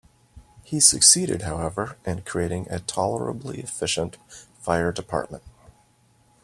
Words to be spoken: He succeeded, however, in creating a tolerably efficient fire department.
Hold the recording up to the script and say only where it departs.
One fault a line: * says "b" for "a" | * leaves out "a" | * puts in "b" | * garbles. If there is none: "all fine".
all fine